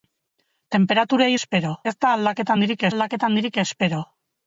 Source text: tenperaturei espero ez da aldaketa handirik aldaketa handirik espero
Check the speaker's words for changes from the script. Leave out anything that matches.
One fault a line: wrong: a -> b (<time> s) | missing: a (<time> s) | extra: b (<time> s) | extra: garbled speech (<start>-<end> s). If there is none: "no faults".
no faults